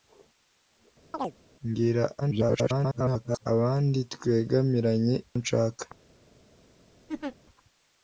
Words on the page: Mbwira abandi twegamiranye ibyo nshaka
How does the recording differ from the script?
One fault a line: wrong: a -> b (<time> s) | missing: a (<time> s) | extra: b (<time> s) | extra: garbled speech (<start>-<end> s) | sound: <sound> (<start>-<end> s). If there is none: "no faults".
sound: chirp (1.1-1.3 s)
extra: garbled speech (2.2-3.5 s)
missing: ibyo (5.1 s)
sound: laugh (7.1-7.4 s)